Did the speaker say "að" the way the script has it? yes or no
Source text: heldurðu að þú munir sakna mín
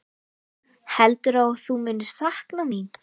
yes